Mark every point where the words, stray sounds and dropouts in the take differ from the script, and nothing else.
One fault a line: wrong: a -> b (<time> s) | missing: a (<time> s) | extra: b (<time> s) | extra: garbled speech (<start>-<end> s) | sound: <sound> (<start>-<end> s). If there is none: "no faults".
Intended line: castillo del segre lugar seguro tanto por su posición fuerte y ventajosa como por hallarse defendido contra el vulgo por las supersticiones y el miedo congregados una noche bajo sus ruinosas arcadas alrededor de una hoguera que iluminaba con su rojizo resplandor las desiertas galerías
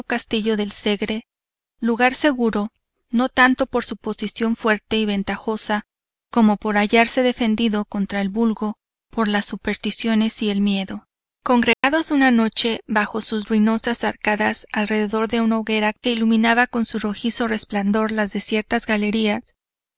extra: no (3.1 s)
sound: dropout (11.7-11.8 s)